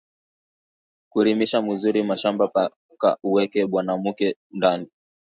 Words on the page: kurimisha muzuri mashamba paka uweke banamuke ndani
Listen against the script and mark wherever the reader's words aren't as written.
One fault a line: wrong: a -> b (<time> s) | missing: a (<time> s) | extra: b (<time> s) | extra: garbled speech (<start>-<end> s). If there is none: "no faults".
no faults